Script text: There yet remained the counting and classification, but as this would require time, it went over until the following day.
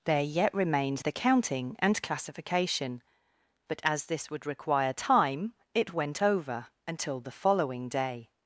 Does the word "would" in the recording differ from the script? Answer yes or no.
no